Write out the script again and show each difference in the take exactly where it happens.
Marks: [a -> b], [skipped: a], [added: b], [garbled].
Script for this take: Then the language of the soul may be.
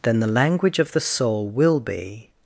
Then the language of the soul [may -> will] be.